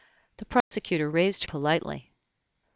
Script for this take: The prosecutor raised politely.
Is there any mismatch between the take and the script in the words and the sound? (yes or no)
yes